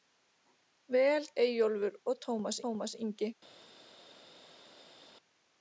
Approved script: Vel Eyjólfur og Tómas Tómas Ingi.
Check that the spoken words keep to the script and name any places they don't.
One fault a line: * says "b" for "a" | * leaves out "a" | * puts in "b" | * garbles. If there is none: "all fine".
all fine